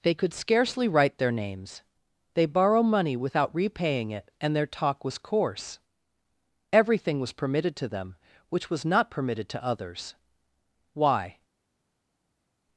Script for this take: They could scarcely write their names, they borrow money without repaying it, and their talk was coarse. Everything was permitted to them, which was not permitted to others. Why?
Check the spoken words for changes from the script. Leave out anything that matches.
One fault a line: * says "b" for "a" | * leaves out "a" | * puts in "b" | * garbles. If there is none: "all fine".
all fine